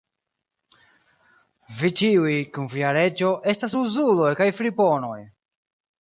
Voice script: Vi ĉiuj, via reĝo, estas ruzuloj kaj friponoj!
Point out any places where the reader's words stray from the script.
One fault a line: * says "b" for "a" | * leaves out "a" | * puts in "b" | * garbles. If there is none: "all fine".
* puts in "kun"